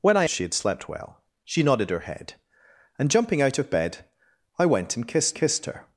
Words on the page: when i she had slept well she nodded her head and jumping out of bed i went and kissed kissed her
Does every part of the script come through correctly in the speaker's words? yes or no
yes